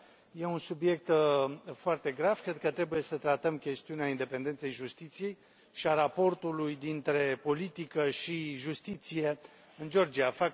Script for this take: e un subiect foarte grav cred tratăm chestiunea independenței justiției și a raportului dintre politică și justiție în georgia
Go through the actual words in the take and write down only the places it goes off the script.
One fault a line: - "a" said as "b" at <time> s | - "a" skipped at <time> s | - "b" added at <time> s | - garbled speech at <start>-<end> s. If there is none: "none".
- "că trebuie să" added at 2.6 s